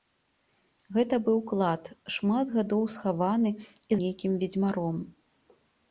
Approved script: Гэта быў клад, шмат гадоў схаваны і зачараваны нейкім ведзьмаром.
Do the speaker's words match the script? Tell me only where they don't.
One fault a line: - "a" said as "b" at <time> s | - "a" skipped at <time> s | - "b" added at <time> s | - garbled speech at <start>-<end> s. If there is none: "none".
- "зачараваны" skipped at 3.9 s